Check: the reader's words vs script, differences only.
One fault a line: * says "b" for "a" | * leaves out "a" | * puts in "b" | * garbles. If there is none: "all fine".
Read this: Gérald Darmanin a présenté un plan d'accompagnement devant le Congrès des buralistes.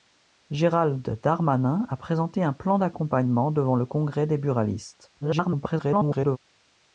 * garbles